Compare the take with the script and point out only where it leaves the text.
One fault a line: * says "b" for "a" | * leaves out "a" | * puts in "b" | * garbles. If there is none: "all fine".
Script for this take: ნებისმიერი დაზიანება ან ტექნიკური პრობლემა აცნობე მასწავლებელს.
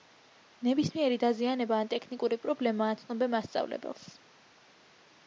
all fine